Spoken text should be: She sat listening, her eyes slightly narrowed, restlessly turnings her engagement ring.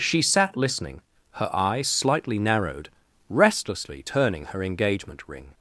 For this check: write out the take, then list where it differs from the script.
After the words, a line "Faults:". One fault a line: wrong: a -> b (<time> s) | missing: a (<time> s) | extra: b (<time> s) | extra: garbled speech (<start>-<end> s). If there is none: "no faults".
She sat listening, her eyes slightly narrowed, restlessly turning her engagement ring.
Faults:
wrong: turnings -> turning (4.0 s)